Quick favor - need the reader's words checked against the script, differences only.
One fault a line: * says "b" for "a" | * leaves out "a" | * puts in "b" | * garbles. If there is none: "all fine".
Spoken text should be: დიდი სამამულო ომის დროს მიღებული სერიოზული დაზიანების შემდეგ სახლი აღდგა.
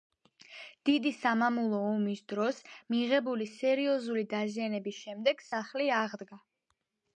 all fine